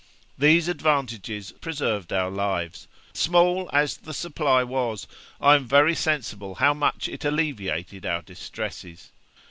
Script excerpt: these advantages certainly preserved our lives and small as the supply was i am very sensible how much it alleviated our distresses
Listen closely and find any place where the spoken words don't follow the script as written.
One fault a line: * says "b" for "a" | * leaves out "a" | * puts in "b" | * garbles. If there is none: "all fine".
* leaves out "certainly"
* leaves out "and"